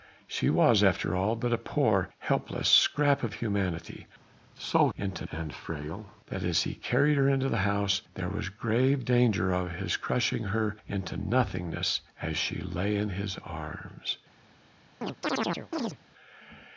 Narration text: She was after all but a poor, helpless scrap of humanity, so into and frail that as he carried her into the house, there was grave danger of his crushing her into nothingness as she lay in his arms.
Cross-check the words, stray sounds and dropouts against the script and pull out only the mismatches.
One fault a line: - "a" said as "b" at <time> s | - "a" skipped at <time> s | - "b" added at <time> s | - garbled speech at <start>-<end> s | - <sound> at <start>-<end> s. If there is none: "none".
- chirp at 15.0-16.0 s